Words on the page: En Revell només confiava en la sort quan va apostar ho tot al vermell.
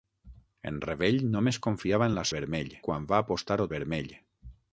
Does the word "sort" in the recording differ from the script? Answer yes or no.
yes